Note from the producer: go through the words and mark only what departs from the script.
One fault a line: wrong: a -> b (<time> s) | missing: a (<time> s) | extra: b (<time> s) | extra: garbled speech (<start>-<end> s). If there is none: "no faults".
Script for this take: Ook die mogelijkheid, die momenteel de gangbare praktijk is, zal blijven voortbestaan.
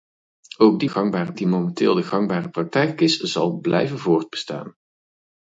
wrong: mogelijkheid -> gangbare (0.9 s)